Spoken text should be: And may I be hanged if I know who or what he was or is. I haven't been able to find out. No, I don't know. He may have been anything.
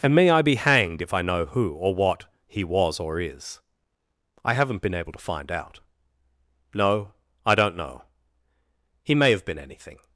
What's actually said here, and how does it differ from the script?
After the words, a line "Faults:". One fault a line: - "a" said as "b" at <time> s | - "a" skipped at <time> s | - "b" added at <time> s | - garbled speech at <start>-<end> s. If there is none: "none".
And may I be hanged if I know who or what he was or is. I haven't been able to find out. No, I don't know. He may have been anything.
Faults:
none